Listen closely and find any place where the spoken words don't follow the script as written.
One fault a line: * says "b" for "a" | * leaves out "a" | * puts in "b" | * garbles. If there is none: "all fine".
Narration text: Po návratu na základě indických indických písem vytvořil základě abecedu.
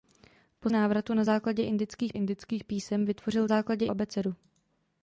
all fine